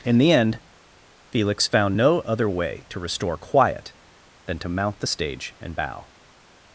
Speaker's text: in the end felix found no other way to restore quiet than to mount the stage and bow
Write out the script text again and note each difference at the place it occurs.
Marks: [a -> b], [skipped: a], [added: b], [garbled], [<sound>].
in the end felix found no other way to restore quiet than to mount the stage and bow